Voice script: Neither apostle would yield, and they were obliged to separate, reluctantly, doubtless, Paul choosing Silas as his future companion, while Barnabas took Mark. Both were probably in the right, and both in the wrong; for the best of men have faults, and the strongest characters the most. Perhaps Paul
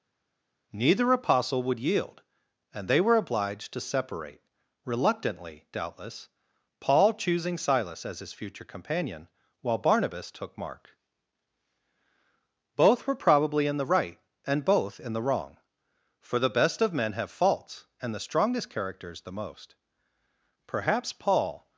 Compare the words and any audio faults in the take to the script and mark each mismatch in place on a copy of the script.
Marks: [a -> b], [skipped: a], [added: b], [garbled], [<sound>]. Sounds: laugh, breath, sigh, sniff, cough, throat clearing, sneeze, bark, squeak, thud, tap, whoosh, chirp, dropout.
Neither apostle would yield, and they were obliged to separate, reluctantly, doubtless, Paul choosing Silas as his future companion, while Barnabas took Mark. Both were probably in the right, and both in the wrong; for the best of men have faults, and the strongest characters the most. Perhaps Paul